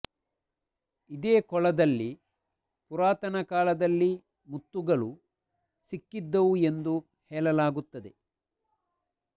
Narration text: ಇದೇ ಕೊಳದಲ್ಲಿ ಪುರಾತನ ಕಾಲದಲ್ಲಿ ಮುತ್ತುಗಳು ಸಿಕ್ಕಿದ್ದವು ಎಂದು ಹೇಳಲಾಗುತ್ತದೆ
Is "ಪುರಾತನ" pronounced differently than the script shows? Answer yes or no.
no